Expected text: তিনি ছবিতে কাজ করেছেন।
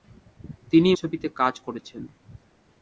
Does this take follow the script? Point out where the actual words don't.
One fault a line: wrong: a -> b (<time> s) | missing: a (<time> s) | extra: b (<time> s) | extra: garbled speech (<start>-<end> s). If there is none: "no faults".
no faults